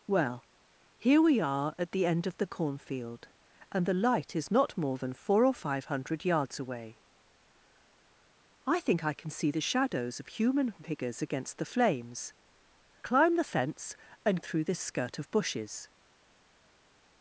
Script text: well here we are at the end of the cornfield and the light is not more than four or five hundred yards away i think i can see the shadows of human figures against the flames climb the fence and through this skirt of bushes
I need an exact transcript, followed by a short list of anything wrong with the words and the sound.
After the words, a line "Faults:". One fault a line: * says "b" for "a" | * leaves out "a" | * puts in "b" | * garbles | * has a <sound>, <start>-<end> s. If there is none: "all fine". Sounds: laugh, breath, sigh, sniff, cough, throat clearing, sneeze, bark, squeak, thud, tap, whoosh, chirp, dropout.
well here we are at the end of the cornfield and the light is not more than four or five hundred yards away i think i can see the shadows of human figures against the flames climb the fence and through this skirt of bushes
Faults:
all fine